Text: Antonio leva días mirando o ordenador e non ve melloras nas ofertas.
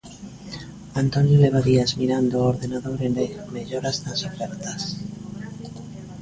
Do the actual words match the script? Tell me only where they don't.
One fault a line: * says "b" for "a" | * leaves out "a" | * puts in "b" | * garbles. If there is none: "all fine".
* leaves out "non"